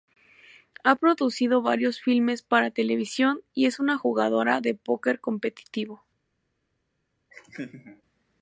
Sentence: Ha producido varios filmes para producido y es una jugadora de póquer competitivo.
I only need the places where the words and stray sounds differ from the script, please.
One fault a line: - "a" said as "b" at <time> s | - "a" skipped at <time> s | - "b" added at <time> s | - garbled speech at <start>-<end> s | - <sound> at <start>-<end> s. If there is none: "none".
- "producido" said as "televisión" at 2.7 s
- laugh at 7.3-8.0 s